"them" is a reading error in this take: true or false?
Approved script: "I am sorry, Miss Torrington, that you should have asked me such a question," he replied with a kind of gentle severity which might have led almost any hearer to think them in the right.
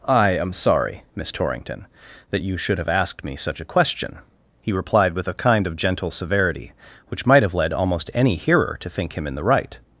true